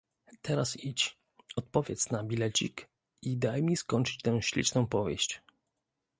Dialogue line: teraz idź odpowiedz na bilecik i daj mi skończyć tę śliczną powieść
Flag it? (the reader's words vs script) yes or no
no